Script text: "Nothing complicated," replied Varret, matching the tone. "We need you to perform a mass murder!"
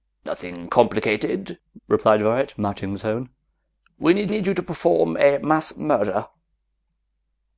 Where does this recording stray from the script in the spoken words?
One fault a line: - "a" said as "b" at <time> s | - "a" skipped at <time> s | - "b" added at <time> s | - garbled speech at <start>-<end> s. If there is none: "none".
- "need" added at 4.3 s